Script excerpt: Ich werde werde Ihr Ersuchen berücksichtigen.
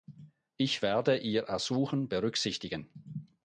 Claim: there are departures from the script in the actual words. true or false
true